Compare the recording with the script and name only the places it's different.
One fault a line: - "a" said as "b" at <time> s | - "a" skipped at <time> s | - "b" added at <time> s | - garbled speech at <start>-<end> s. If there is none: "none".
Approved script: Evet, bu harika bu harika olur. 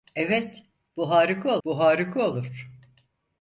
none